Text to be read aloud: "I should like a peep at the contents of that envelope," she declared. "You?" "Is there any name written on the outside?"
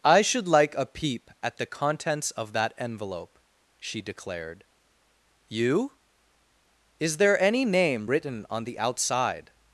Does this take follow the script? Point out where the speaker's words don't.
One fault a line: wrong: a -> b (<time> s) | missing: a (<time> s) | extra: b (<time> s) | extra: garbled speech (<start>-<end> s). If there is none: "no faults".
no faults